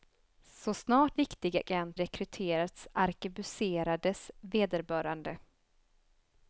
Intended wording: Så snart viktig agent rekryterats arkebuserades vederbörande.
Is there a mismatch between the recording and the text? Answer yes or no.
no